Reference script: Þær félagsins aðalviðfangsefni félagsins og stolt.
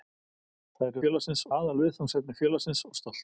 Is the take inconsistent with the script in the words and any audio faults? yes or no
no